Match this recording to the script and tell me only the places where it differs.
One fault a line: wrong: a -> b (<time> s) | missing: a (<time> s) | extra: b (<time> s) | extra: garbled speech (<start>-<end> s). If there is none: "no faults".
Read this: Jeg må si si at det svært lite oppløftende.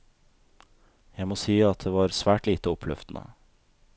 missing: si (1.6 s)
extra: var (1.9 s)